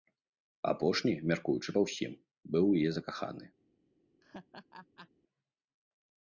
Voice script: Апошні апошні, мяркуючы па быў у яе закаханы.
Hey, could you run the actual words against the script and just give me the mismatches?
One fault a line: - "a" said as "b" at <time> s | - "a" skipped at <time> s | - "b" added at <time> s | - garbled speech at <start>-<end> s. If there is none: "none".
- "апошні" skipped at 1.1 s
- "ўсім" added at 1.9 s